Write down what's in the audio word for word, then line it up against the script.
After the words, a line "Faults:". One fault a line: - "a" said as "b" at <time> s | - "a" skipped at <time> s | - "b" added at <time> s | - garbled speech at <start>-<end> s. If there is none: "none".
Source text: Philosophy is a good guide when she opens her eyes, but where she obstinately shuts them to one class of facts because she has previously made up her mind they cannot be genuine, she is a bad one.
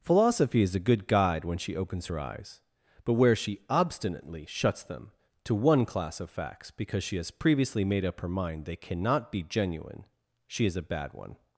Philosophy is a good guide when she opens her eyes, but where she obstinately shuts them to one class of facts because she has previously made up her mind they cannot be genuine, she is a bad one.
Faults:
none